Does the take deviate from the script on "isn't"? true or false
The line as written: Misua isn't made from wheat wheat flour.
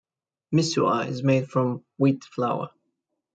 true